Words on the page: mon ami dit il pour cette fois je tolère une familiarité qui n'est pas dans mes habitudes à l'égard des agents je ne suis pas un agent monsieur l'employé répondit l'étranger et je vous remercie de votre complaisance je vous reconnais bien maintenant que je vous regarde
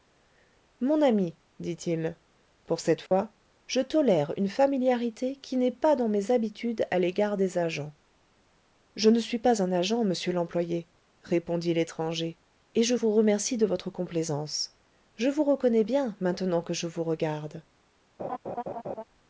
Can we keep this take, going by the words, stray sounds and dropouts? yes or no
no